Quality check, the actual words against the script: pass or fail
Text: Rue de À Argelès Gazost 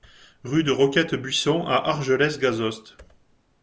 fail